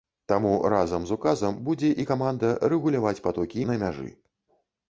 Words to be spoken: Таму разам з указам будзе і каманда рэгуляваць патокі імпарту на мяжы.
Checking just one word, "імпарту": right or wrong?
wrong